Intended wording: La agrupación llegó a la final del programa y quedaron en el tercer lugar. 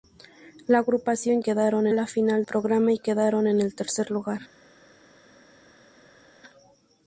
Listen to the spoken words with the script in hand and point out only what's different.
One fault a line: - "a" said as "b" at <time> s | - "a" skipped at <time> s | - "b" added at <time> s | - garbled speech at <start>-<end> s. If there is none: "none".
- "llegó" said as "quedaron" at 1.4 s
- "del" skipped at 2.4 s